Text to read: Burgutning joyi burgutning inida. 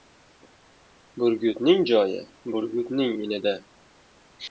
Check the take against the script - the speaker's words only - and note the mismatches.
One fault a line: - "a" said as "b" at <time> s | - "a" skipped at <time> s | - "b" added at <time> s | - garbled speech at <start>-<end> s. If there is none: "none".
none